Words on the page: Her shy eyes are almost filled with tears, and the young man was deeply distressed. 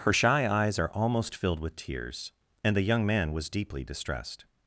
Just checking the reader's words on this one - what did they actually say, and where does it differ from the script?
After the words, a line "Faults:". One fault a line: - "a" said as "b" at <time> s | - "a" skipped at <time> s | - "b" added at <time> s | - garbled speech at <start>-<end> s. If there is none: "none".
Her shy eyes are almost filled with tears, and the young man was deeply distressed.
Faults:
none